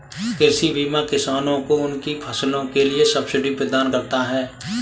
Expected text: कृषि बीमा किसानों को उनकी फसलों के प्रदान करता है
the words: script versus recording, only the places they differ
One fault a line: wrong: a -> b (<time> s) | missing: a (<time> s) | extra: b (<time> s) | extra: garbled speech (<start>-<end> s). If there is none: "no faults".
extra: लिए सब्सिडी (2.8 s)